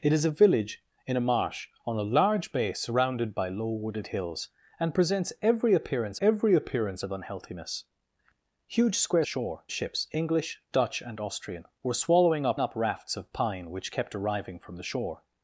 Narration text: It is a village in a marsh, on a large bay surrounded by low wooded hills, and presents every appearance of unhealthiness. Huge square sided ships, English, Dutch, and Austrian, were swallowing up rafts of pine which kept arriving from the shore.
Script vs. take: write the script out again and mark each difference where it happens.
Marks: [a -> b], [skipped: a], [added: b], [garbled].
It is a village in a marsh, on a large bay surrounded by low wooded hills, and presents every appearance [added: every appearance] of unhealthiness. Huge square [sided -> shore] ships, English, Dutch, and Austrian, were swallowing up [added: up] rafts of pine which kept arriving from the shore.